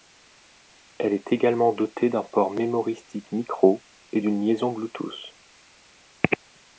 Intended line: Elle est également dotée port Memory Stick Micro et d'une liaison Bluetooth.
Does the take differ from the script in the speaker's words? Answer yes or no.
yes